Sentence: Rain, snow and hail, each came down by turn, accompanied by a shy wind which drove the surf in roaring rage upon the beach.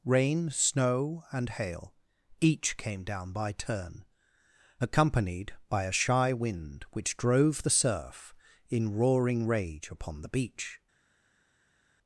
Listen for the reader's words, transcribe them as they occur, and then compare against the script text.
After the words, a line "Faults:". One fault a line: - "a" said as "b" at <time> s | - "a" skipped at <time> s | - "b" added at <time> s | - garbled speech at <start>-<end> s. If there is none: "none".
Rain, snow and hail, each came down by turn, accompanied by a shy wind which drove the surf in roaring rage upon the beach.
Faults:
none